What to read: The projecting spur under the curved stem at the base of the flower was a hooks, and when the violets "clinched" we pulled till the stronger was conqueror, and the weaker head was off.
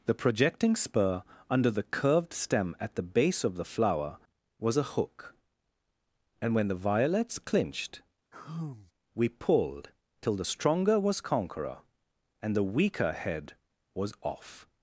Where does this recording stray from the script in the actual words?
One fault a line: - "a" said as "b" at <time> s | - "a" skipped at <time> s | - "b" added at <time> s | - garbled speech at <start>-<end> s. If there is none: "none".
- "hooks" said as "hook" at 4.8 s